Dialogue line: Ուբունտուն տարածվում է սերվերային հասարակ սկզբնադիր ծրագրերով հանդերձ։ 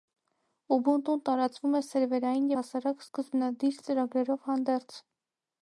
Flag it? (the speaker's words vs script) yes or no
no